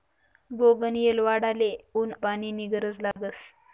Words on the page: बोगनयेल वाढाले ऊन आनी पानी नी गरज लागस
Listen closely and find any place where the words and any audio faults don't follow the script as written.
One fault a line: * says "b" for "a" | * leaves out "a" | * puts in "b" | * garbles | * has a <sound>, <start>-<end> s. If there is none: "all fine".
* leaves out "आनी"
* has a dropout, 3.1-3.2 s